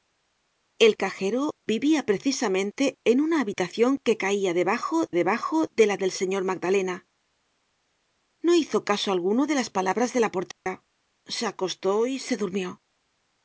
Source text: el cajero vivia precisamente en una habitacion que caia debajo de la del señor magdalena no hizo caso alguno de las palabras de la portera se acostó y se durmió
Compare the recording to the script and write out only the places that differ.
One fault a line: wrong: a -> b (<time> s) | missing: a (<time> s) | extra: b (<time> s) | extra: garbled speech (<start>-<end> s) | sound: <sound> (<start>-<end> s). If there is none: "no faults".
extra: debajo (5.1 s)
sound: dropout (10.5-10.7 s)